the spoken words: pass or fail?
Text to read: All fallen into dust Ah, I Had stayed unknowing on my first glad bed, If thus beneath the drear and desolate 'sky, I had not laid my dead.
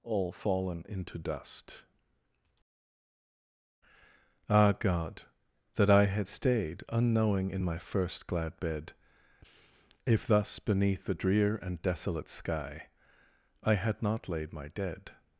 fail